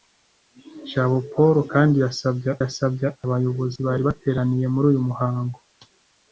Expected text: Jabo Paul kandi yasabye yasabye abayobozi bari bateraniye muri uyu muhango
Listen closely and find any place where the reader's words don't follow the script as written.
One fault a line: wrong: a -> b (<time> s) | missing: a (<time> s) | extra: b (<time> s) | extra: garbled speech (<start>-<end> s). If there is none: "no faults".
no faults